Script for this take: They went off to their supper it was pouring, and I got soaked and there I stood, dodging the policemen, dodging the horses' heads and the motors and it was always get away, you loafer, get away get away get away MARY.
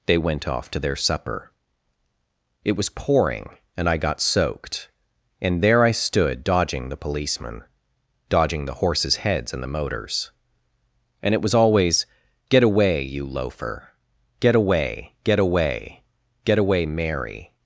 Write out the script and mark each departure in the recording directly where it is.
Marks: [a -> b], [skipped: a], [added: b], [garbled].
They went off to their supper it was pouring, and I got soaked and there I stood, dodging the policemen, dodging the horses' heads and the motors and it was always get away, you loafer, get away get away get away MARY.